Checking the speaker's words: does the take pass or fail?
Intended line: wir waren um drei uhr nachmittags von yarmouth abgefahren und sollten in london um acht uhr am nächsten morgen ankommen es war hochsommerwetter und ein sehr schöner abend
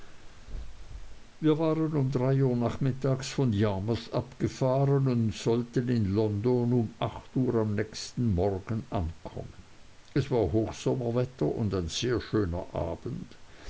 pass